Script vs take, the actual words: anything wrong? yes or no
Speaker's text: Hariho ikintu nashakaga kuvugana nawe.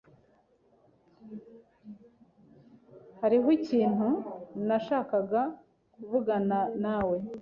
no